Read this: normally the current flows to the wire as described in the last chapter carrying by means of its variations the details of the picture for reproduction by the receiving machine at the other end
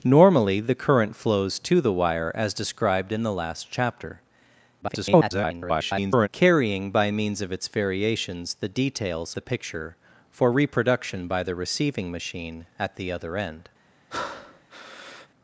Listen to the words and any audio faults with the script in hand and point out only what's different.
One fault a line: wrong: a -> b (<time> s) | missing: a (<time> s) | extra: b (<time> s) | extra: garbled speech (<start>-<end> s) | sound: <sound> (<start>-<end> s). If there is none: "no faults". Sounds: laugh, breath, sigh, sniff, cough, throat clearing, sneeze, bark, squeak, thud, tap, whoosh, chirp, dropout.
extra: garbled speech (4.8-6.3 s)
missing: of (9.3 s)
sound: breath (14.1-15.3 s)